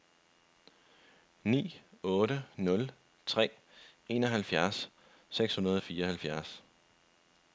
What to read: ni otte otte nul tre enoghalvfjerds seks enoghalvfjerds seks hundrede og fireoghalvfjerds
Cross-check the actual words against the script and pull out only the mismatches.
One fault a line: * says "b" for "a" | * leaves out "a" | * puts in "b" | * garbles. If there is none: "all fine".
* leaves out "otte"
* leaves out "enoghalvfjerds seks"